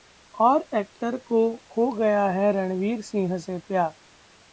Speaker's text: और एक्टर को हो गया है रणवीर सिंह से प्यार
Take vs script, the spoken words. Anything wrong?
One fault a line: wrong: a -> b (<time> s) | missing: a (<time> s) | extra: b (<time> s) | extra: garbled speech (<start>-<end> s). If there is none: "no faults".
no faults